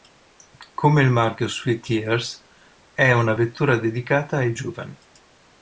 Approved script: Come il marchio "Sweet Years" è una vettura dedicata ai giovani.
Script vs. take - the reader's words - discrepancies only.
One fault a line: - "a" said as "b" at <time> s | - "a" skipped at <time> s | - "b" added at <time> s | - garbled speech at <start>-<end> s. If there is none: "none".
none